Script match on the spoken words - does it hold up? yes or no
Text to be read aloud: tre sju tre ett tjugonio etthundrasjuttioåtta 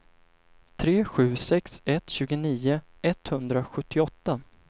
no